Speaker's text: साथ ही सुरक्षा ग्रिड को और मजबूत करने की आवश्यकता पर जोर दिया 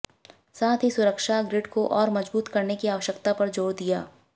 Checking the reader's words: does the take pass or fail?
pass